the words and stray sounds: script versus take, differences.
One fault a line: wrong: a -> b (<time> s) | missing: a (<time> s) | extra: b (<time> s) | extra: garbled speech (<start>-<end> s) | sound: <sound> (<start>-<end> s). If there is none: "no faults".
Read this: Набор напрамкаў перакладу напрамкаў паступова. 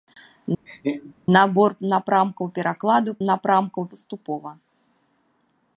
sound: laugh (0.7-1.1 s)